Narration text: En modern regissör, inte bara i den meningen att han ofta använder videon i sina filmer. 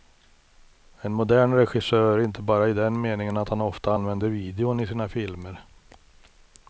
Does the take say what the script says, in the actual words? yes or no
yes